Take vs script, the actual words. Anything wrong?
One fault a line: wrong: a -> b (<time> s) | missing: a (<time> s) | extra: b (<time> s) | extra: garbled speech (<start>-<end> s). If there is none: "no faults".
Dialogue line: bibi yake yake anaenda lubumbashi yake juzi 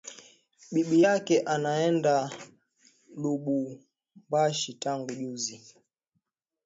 missing: yake (1.4 s)
wrong: yake -> tangu (4.7 s)